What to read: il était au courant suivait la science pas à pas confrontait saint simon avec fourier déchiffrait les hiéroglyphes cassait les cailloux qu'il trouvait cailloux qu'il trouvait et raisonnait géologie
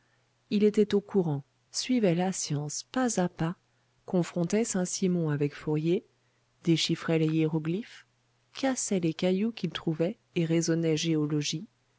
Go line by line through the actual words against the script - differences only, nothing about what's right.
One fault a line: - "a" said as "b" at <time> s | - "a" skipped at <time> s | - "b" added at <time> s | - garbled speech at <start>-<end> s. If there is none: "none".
- "cailloux qu'il trouvait" skipped at 10.2 s